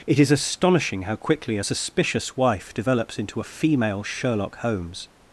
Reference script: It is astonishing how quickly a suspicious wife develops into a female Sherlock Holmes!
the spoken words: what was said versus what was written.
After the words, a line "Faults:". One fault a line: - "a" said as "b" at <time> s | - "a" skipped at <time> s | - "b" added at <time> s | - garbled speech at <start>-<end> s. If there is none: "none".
It is astonishing how quickly a suspicious wife develops into a female Sherlock Holmes!
Faults:
none